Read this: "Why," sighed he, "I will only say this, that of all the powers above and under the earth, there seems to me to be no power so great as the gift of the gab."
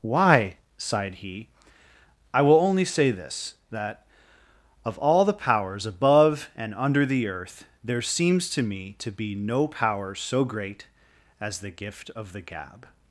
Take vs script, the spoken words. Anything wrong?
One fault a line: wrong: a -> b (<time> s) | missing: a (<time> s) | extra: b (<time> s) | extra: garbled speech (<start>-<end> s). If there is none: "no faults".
no faults